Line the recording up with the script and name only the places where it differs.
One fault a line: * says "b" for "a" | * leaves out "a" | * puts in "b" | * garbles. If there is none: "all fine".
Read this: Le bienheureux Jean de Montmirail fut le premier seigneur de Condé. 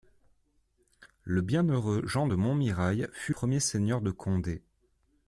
* leaves out "le"